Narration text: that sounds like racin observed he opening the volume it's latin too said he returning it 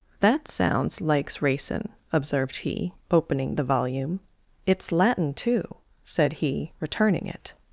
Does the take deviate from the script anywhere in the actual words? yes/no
yes